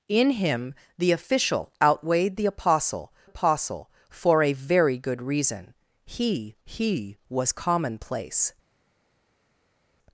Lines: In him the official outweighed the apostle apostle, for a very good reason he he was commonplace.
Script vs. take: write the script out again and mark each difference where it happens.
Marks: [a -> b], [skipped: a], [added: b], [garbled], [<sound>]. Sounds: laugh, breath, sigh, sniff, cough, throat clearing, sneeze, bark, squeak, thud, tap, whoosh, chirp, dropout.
In him the official outweighed the apostle apostle, for a very good reason he he was commonplace.